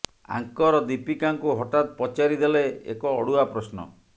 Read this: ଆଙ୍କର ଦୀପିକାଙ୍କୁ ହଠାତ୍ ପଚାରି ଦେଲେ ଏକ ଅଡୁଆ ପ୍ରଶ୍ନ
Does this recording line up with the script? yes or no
yes